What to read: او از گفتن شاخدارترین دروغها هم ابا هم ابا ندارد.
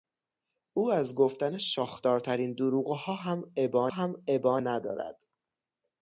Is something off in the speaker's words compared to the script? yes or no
no